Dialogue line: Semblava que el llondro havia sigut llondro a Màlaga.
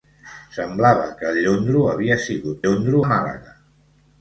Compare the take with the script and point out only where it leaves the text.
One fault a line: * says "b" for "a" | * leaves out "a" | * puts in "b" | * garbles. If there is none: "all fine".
all fine